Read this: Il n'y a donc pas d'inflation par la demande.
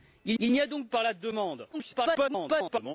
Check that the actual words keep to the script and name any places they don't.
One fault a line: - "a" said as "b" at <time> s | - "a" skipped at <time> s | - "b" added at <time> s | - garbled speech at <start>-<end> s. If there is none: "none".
- "il" added at 0.4 s
- "pas d'inflation" skipped at 0.9 s
- garbled speech at 1.7-2.9 s